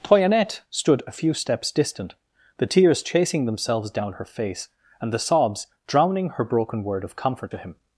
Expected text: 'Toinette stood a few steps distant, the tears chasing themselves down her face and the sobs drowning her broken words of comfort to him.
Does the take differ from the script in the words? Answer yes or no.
yes